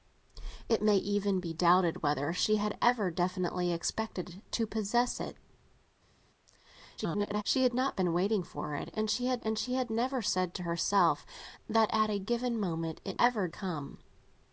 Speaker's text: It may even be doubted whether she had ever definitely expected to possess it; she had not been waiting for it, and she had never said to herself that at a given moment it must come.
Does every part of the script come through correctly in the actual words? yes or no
no